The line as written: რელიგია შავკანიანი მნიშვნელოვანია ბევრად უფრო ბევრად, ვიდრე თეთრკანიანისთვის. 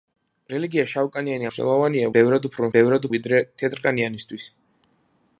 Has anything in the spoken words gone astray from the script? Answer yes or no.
no